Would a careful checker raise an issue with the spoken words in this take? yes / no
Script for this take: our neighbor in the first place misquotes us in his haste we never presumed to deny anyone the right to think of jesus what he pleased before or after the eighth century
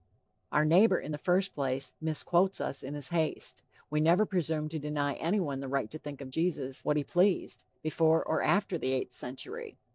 no